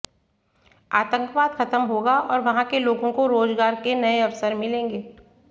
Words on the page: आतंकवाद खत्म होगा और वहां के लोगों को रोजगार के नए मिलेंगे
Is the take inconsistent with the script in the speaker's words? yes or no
yes